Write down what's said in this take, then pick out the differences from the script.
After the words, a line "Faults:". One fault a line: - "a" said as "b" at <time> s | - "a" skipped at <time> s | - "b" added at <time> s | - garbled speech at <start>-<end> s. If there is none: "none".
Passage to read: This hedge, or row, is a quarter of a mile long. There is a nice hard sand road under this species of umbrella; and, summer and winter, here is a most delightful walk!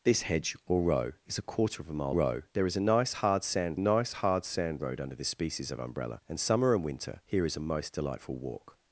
This hedge, or row, is a quarter of a mile row. There is a nice hard sand nice hard sand road under this species of umbrella; and, summer and winter, here is a most delightful walk!
Faults:
- "long" said as "row" at 2.1 s
- "nice hard sand" added at 3.8 s